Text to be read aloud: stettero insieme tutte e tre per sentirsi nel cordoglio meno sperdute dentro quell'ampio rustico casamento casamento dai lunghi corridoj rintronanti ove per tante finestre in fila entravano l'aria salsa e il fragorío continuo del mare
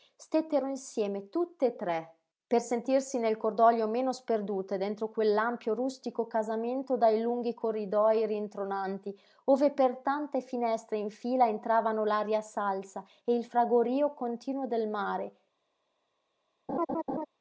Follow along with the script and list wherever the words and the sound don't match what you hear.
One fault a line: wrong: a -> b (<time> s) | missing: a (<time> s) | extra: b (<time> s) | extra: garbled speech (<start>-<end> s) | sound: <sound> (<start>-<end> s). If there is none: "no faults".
missing: casamento (7.0 s)
sound: laugh (16.7-17.3 s)